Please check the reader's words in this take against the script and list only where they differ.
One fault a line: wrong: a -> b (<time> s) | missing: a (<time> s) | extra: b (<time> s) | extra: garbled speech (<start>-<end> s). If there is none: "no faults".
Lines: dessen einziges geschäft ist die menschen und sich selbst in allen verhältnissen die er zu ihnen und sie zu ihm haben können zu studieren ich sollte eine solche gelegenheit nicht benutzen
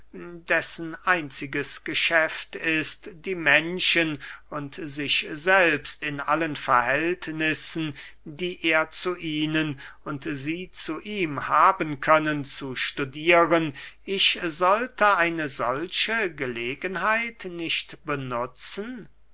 no faults